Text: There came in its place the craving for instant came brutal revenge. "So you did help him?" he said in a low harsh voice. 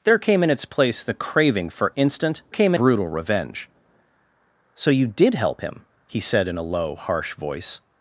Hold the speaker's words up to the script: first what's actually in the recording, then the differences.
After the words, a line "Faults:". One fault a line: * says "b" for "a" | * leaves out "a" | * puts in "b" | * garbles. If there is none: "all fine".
There came in its place the craving for instant came brutal revenge. "So you did help him?" he said in a low harsh voice.
Faults:
all fine